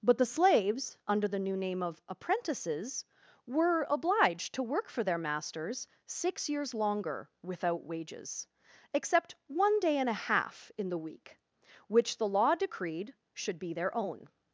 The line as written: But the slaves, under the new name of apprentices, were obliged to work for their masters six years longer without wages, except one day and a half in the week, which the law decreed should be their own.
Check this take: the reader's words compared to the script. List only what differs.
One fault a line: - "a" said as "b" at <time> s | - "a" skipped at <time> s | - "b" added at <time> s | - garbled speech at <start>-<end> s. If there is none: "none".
none